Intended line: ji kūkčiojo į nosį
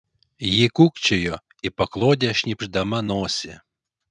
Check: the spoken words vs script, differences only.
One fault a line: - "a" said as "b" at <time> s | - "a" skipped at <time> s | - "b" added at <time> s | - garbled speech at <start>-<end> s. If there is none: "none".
- "paklodę šnypšdama" added at 1.8 s